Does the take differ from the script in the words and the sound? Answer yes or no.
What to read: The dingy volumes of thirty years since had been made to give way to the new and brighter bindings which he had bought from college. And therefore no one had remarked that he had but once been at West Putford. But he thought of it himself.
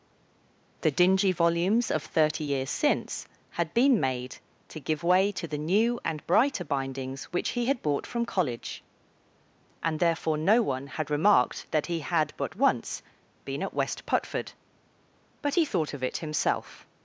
no